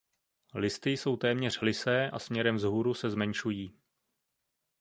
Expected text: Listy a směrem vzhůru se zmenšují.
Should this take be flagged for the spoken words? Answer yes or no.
yes